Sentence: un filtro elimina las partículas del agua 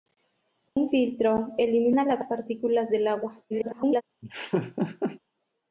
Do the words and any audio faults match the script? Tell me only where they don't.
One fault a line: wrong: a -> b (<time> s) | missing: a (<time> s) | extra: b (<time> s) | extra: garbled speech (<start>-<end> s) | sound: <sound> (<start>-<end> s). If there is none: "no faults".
sound: dropout (0.7-0.8 s)
extra: garbled speech (3.5-4.0 s)
sound: laugh (4.2-5.2 s)